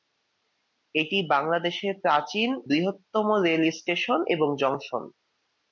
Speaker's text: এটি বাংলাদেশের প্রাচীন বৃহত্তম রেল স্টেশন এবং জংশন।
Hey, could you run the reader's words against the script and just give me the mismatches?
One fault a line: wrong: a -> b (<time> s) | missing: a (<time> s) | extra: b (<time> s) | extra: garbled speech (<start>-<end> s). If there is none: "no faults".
no faults